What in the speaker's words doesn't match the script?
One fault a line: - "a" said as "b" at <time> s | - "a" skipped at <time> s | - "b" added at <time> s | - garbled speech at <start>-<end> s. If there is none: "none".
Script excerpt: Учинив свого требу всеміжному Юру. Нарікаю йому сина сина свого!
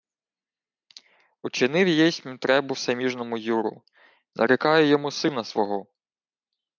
- "свого" said as "єсмь" at 1.9 s
- "сина" skipped at 5.4 s